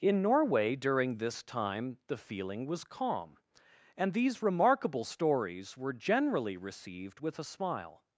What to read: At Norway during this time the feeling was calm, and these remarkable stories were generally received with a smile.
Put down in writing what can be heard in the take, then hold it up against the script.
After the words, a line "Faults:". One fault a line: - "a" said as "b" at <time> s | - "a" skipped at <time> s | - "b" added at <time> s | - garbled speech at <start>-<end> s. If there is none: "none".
In Norway during this time the feeling was calm, and these remarkable stories were generally received with a smile.
Faults:
- "At" said as "In" at 0.0 s